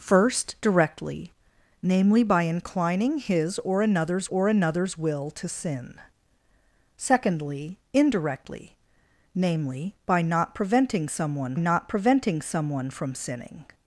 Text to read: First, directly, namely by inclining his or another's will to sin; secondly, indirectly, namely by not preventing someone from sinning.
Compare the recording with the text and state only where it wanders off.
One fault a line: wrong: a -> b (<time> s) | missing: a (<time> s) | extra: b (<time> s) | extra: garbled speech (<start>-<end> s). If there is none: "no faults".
extra: or another's (4.3 s)
extra: not preventing someone (11.6 s)